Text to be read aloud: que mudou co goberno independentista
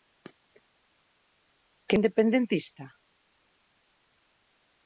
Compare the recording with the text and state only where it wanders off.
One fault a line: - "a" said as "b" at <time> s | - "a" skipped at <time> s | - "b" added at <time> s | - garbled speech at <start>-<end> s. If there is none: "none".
- "mudou co goberno" skipped at 2.0 s